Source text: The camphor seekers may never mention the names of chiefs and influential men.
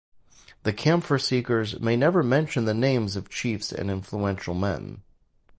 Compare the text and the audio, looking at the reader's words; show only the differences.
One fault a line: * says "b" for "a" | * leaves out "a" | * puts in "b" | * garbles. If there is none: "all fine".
all fine